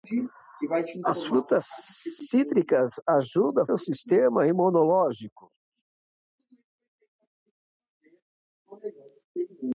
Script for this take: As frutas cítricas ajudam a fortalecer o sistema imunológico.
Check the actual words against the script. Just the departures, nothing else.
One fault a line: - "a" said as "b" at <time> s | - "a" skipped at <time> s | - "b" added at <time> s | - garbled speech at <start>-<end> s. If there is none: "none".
- "fortalecer" skipped at 3.7 s